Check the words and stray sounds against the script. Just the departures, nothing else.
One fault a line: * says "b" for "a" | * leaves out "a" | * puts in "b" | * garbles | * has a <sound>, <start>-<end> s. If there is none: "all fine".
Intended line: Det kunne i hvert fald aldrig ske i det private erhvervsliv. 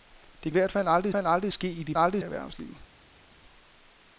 * leaves out "kunne"
* puts in "fald aldrig"
* says "aldrig" for "private"